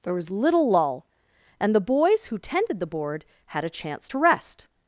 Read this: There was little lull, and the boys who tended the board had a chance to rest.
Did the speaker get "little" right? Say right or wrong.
right